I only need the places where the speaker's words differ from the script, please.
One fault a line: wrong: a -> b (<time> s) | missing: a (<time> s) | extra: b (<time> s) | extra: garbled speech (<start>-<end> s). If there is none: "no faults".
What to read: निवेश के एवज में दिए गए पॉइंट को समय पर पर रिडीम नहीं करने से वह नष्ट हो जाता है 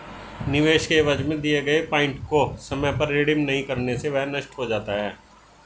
missing: पर (3.1 s)